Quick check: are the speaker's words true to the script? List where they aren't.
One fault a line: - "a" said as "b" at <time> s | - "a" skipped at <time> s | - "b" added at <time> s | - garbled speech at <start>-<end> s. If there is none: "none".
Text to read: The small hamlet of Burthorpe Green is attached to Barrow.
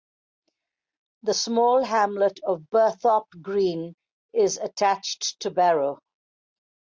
none